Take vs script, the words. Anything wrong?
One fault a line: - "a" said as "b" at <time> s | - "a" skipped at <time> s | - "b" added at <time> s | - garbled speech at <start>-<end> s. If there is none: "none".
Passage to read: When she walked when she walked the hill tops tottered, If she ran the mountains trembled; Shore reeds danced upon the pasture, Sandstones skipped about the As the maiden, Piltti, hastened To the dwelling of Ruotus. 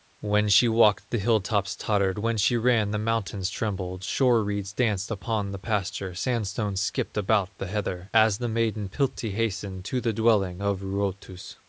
- "when she walked" skipped at 1.1 s
- "If" said as "When" at 2.2 s
- "heather" added at 7.7 s